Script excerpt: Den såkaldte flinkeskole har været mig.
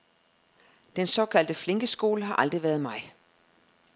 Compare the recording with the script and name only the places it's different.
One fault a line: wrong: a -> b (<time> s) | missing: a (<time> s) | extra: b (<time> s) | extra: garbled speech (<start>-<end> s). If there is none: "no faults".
extra: aldrig (2.3 s)